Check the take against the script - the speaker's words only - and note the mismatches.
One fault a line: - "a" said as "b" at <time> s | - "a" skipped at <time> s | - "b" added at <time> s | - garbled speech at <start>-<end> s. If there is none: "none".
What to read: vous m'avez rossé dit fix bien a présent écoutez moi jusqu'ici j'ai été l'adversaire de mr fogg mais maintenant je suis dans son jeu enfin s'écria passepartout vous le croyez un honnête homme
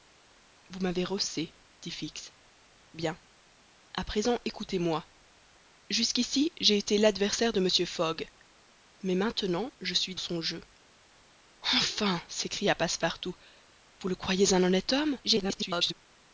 - "dans" skipped at 10.2 s
- garbled speech at 15.2-15.9 s